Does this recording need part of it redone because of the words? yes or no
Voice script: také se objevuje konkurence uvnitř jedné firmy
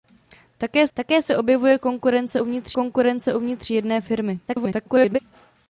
yes